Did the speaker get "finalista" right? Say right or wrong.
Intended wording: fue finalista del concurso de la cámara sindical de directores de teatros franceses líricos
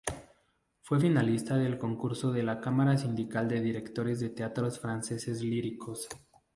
right